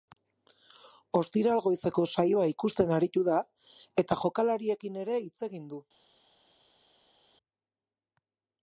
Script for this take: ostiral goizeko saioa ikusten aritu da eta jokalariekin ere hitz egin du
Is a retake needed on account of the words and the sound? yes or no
no